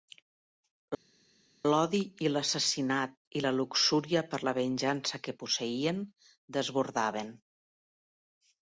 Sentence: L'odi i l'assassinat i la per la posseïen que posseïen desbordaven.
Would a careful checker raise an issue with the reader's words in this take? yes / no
yes